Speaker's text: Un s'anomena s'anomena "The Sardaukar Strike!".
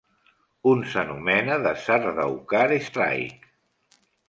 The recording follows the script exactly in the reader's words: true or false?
false